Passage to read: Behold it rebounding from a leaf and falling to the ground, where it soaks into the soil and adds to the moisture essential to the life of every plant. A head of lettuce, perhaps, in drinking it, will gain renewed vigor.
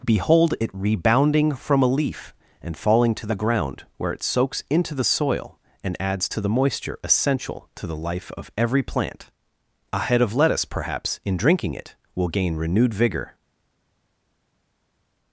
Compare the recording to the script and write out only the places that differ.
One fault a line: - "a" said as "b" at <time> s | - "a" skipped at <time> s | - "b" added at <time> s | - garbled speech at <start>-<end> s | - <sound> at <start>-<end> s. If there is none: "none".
none